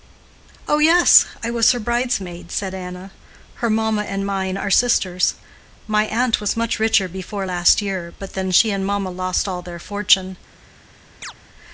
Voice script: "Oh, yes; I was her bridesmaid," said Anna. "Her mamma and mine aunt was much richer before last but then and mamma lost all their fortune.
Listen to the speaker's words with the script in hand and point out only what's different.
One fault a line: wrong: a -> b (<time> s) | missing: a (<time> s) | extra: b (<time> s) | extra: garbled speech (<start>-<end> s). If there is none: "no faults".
extra: are sisters My (4.6 s)
extra: year (7.8 s)
extra: she (8.5 s)